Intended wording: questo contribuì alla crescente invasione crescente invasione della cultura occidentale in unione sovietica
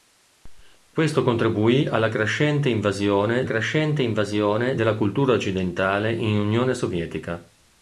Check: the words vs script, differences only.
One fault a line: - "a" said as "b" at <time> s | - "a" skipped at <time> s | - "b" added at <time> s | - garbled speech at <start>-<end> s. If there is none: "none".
none